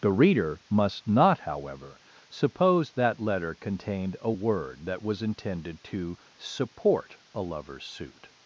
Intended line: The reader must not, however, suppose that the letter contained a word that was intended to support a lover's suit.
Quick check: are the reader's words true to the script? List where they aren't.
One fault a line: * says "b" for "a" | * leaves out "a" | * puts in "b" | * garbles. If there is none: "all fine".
* leaves out "the"